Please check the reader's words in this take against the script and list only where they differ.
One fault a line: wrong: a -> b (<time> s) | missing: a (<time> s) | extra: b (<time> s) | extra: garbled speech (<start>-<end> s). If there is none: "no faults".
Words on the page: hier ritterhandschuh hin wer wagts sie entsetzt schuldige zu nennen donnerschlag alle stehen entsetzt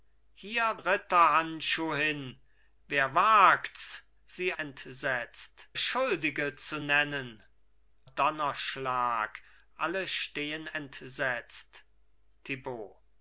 no faults